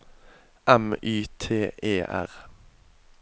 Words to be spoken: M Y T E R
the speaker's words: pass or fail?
pass